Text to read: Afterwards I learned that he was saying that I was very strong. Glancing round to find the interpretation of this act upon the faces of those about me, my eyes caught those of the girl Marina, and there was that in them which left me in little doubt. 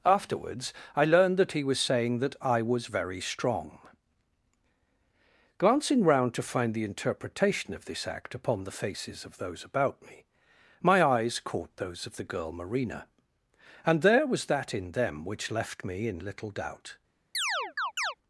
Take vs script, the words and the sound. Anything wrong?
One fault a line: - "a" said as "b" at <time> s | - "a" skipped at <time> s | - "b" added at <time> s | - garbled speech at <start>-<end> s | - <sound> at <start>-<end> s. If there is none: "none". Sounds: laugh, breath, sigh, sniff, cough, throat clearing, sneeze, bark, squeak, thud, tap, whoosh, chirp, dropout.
- chirp at 17.3-18.1 s